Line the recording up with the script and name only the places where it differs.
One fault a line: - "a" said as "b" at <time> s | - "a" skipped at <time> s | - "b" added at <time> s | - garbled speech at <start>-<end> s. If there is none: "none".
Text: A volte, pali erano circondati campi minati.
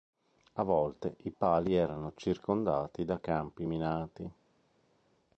- "i" added at 1.2 s
- "da" added at 3.0 s